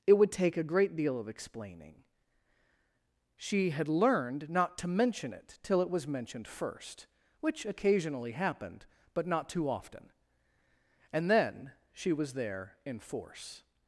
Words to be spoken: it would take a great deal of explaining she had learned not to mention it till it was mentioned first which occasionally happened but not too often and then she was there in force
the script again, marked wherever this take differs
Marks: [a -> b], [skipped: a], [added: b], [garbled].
it would take a great deal of explaining she had learned not to mention it till it was mentioned first which occasionally happened but not too often and then she was there in force